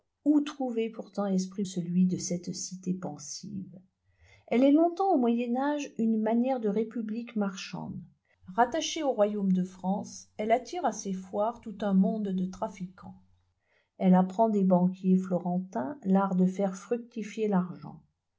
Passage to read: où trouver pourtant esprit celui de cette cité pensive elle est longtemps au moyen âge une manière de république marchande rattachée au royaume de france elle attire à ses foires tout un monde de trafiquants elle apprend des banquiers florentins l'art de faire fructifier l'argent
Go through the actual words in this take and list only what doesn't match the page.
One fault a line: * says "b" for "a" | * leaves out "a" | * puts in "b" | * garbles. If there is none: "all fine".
all fine